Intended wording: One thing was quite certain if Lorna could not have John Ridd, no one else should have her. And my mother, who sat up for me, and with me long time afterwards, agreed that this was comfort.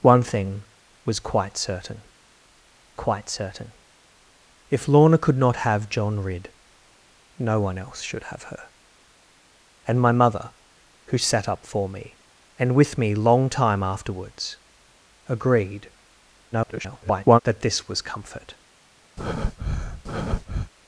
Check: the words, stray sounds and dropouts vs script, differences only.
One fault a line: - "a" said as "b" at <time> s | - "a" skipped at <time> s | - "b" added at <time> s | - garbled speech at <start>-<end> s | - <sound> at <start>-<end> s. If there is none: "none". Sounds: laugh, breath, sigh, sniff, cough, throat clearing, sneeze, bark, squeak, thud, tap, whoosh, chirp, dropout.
- "quite certain" added at 2.9 s
- garbled speech at 16.5-17.4 s
- breath at 19.2-20.7 s